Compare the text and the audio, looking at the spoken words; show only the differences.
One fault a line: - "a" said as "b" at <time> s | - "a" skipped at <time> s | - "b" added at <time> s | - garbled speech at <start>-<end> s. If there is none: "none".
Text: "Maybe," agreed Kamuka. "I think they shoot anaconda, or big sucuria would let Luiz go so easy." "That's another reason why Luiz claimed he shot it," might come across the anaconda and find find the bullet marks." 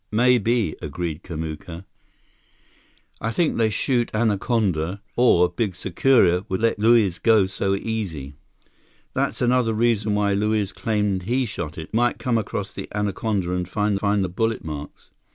none